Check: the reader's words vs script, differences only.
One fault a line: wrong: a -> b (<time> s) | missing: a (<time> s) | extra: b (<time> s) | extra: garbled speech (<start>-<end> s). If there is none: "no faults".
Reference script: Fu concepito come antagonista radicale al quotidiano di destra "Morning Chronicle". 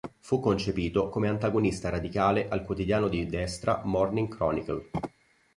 no faults